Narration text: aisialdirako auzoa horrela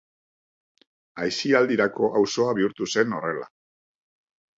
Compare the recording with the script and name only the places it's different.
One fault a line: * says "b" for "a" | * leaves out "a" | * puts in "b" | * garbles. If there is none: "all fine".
* puts in "bihurtu zen"